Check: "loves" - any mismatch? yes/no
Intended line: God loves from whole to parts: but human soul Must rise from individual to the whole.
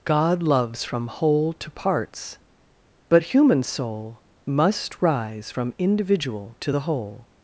no